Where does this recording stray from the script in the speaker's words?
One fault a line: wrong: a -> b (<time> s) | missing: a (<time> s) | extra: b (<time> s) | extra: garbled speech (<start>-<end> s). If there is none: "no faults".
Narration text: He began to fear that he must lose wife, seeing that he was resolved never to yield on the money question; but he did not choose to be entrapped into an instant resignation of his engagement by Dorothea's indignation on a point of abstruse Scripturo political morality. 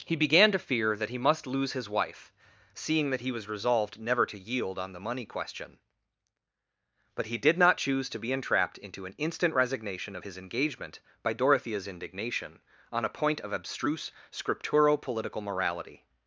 extra: his (1.7 s)